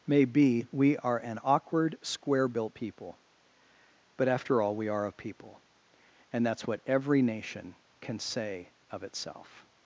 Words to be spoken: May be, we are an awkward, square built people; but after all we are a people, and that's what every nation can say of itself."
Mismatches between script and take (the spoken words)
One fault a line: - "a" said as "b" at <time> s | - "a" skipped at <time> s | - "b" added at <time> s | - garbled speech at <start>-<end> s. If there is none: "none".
none